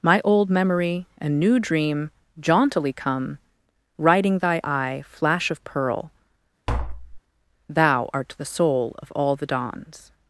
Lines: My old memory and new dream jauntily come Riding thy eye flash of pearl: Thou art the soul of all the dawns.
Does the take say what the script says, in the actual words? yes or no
yes